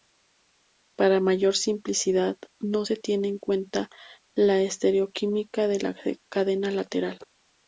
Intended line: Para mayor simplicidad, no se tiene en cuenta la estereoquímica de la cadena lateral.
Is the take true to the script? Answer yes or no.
yes